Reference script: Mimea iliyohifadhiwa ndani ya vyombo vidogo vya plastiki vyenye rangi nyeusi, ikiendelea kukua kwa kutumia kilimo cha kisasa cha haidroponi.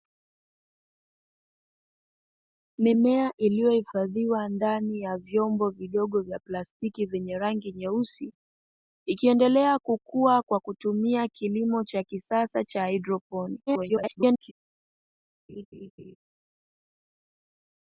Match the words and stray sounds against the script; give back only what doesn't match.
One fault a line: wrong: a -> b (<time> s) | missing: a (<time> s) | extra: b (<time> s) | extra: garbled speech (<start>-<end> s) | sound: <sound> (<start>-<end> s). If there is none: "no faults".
extra: garbled speech (13.7-14.5 s)
sound: laugh (15.5-16.2 s)